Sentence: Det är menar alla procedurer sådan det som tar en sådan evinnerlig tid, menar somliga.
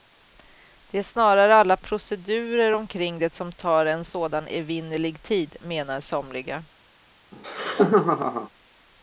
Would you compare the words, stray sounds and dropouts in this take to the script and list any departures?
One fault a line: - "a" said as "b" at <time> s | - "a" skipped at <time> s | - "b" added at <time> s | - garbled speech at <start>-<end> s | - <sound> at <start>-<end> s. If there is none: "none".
- "menar" said as "snarare" at 1.0 s
- "sådan" said as "omkring" at 2.7 s
- laugh at 7.3-8.5 s